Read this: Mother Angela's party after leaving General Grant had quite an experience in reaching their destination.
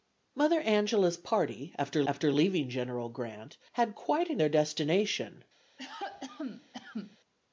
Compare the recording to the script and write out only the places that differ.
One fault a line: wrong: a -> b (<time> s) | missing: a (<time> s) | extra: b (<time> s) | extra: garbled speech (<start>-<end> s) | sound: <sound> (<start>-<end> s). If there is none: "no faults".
extra: after (2.1 s)
missing: experience in reaching (4.4 s)
sound: cough (5.8-7.2 s)